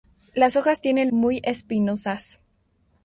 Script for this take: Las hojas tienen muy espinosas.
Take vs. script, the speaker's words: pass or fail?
pass